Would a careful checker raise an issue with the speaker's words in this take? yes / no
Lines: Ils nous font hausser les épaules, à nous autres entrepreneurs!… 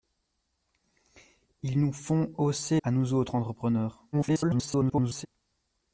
yes